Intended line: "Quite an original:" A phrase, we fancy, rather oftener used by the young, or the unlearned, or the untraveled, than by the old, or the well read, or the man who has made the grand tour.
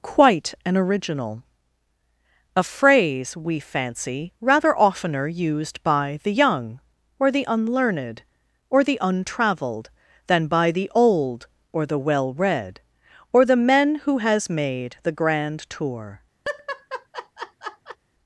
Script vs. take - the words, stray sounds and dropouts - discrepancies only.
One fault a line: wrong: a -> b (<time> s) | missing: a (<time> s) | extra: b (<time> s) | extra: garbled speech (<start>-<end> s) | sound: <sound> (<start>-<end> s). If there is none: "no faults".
wrong: man -> men (13.6 s)
sound: laugh (16.4-18.0 s)